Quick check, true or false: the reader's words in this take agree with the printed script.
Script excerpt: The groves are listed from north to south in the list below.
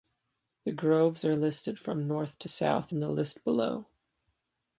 true